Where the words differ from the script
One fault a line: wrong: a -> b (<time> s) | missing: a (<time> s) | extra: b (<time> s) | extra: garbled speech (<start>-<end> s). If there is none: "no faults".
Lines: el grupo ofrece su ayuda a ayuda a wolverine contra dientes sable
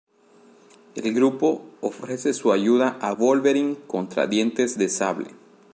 missing: ayuda a (3.1 s)
extra: de (4.8 s)